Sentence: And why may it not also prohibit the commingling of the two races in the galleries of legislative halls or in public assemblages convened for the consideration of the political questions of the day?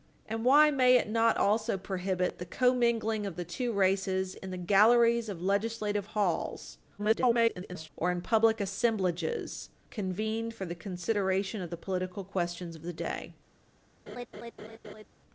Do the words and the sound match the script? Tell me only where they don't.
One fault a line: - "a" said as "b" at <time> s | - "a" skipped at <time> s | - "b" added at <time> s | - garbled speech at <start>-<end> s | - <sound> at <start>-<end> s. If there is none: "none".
- garbled speech at 7.0-7.9 s
- laugh at 14.1-15.0 s